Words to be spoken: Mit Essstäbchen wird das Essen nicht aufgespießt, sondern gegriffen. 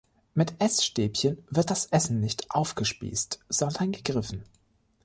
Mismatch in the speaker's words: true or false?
false